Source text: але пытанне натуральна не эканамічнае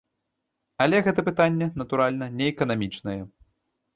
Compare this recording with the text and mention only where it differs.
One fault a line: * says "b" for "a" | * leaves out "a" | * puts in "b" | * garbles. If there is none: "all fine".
* puts in "гэта"